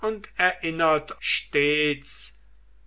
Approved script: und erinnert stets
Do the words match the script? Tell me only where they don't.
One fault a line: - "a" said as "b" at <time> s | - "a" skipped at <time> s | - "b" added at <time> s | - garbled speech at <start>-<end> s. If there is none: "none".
none